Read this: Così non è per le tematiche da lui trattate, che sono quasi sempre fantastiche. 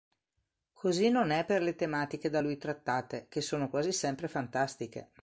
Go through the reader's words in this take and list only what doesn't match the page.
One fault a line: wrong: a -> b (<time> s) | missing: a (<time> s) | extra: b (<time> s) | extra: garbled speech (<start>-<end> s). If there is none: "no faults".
no faults